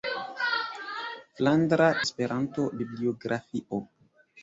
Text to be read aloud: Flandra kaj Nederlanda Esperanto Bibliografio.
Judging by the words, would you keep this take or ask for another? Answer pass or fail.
fail